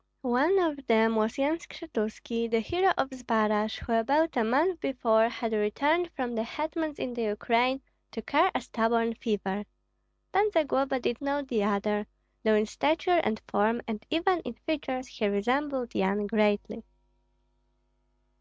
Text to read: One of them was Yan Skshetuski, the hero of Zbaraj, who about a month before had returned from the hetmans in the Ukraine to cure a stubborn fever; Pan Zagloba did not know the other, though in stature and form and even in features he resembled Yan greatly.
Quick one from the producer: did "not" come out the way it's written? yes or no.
no